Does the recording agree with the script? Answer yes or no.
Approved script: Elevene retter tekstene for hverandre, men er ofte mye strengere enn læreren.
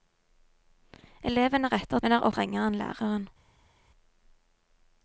no